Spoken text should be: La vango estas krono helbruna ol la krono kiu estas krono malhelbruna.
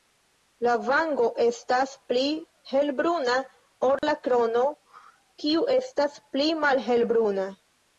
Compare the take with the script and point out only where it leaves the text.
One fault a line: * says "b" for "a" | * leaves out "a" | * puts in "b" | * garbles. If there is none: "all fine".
* says "pli" for "krono"
* says "pli" for "krono"